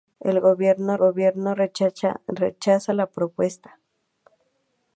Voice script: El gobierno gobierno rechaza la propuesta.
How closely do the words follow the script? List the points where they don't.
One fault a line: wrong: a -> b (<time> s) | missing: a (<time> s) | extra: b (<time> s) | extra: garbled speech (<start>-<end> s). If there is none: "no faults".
no faults